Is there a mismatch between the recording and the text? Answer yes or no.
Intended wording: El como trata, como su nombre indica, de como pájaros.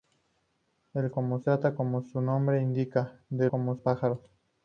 no